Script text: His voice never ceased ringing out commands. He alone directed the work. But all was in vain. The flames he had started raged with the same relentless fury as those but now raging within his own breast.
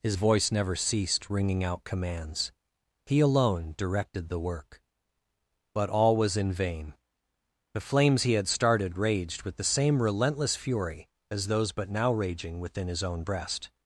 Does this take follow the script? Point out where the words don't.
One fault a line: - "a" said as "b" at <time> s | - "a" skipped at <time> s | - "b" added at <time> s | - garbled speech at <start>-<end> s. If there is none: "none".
none